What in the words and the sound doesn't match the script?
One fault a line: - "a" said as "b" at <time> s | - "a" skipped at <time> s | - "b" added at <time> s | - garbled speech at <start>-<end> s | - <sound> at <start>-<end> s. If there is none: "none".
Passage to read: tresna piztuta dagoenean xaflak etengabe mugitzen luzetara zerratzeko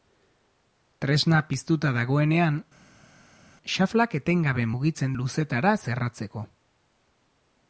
none